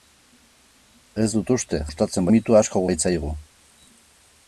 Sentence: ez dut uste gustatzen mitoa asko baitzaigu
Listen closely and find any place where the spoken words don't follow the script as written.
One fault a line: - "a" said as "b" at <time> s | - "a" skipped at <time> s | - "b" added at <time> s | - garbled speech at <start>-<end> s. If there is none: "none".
none